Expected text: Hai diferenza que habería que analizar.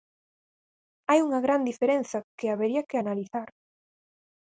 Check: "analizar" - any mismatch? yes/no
no